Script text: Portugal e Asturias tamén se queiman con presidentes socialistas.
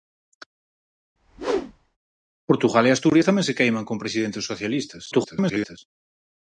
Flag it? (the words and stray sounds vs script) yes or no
yes